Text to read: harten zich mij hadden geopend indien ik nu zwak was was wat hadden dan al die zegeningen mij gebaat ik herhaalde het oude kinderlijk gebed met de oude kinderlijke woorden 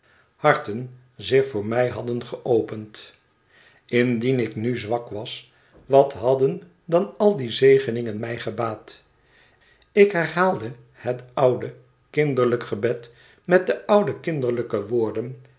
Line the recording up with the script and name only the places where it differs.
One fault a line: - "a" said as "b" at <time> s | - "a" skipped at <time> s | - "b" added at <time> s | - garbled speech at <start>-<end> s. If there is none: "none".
- "voor" added at 1.5 s
- "was" skipped at 5.5 s